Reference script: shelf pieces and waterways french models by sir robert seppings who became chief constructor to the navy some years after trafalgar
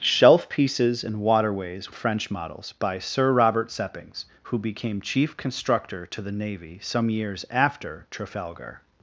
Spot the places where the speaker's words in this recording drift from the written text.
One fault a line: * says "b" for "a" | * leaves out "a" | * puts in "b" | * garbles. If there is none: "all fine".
all fine